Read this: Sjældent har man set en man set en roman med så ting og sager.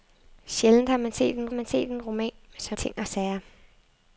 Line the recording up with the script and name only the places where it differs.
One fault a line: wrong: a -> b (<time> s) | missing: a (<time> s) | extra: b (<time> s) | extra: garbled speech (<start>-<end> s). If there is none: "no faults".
no faults